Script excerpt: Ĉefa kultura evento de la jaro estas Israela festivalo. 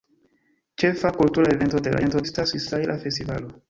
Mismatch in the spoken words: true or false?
true